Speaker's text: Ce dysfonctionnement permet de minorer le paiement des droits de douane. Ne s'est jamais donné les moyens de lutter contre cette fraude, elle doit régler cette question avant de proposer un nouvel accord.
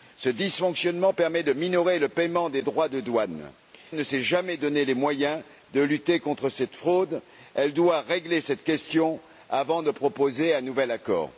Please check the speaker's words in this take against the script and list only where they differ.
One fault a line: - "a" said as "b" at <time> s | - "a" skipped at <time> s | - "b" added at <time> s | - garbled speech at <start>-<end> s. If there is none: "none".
none